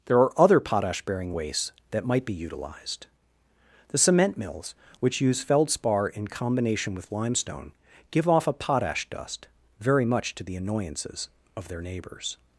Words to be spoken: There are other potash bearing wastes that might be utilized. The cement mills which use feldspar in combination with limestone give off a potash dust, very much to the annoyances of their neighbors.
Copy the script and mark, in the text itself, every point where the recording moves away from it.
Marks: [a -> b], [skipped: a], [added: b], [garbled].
There are other potash bearing wastes that might be utilized. The cement mills which use feldspar in combination with limestone give off a potash dust, very much to the annoyances of their neighbors.